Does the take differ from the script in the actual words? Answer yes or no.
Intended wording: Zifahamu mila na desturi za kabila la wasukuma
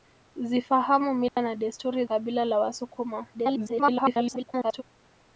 yes